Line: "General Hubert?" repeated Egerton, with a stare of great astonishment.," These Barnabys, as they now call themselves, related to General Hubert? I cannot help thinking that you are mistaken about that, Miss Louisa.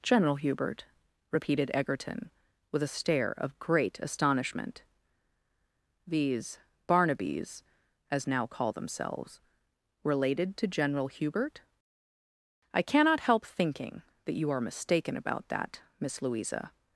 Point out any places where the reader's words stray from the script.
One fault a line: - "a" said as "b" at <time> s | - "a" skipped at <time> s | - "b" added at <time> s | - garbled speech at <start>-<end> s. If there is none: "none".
- "they" skipped at 8.3 s